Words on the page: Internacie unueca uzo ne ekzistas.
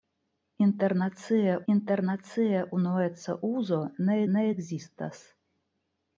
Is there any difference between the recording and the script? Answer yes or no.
yes